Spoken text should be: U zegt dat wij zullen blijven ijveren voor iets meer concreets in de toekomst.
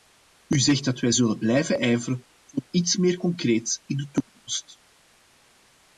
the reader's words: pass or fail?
pass